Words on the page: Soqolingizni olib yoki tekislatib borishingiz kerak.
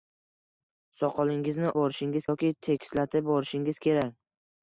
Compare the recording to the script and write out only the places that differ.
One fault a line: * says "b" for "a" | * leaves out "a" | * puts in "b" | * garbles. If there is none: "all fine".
* says "borishingiz" for "olib"